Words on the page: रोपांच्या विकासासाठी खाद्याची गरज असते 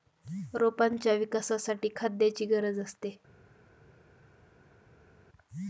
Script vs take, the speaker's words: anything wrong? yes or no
no